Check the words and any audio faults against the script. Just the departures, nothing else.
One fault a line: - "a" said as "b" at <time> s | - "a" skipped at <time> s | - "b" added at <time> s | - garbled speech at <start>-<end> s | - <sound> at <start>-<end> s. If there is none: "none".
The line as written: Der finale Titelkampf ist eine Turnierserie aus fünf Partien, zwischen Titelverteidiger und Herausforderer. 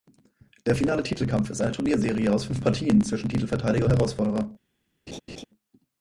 - "und" skipped at 3.9 s
- laugh at 5.1-5.4 s